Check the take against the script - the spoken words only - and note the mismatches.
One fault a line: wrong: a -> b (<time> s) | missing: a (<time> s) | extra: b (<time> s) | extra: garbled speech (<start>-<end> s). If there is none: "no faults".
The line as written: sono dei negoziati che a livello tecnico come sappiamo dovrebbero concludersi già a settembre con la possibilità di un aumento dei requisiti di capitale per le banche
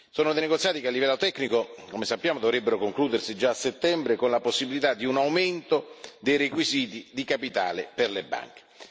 no faults